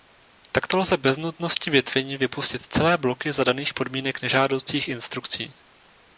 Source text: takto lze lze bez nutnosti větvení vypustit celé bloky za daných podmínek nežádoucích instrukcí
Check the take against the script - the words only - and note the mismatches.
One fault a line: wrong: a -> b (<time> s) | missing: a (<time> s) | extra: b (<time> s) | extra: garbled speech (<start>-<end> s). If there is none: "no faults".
missing: lze (1.0 s)